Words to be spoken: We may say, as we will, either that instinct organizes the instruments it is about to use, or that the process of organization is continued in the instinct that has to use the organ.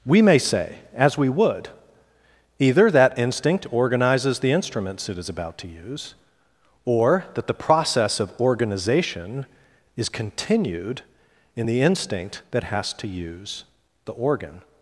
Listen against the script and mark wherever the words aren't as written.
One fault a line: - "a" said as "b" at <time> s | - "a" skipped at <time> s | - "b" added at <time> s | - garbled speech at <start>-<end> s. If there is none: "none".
- "will" said as "would" at 1.3 s